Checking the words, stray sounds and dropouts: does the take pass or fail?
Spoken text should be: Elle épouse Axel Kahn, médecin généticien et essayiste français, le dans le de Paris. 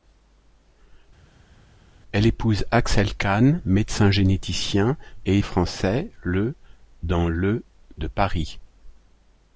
fail